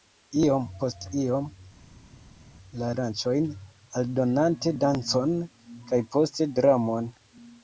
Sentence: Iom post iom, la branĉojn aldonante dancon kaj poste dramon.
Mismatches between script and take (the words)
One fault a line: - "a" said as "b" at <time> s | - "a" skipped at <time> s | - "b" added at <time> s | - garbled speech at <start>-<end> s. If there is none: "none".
none